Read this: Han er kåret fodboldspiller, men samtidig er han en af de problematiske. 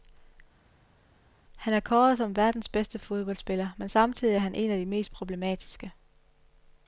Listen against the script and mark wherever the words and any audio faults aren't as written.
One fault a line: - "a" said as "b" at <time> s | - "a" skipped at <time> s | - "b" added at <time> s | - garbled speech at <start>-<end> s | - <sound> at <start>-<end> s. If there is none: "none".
- "som verdens bedste" added at 2.2 s
- "mest" added at 4.9 s